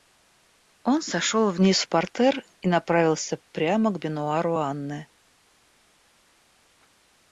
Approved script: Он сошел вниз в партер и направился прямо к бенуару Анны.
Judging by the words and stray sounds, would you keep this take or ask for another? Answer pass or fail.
pass